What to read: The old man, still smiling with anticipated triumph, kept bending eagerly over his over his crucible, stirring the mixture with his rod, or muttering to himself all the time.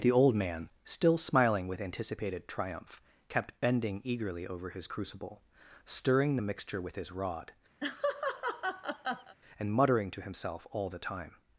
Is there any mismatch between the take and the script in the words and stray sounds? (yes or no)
yes